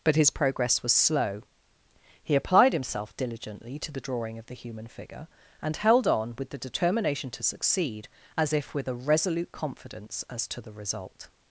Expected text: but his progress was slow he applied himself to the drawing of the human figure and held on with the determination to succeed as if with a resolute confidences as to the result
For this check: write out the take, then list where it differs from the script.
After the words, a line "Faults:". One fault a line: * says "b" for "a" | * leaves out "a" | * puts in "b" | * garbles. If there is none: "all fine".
but his progress was slow he applied himself diligently to the drawing of the human figure and held on with the determination to succeed as if with a resolute confidence as to the result
Faults:
* puts in "diligently"
* says "confidence" for "confidences"